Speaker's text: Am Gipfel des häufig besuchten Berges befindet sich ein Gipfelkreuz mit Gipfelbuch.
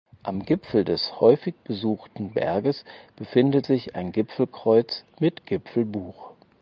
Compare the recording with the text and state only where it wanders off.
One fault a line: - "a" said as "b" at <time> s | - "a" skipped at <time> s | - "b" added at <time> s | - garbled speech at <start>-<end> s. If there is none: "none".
none